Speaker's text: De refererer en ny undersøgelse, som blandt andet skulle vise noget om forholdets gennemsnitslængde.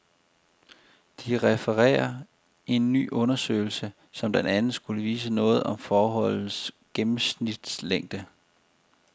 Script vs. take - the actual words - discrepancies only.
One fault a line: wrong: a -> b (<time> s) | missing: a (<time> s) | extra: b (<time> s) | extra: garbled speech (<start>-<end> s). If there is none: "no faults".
no faults